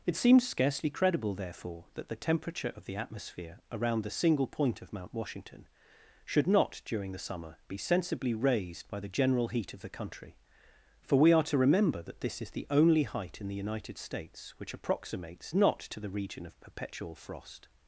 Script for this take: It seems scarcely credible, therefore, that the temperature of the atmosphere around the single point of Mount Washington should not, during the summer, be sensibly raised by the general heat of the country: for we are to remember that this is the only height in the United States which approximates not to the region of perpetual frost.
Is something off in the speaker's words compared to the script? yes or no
no